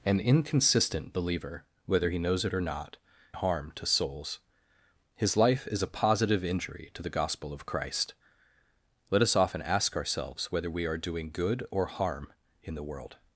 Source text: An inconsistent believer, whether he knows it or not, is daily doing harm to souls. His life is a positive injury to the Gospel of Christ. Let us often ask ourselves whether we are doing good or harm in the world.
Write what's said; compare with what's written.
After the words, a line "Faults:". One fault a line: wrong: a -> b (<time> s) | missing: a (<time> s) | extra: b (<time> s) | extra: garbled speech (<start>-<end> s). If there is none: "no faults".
An inconsistent believer, whether he knows it or not, harm to souls. His life is a positive injury to the Gospel of Christ. Let us often ask ourselves whether we are doing good or harm in the world.
Faults:
missing: is daily doing (3.0 s)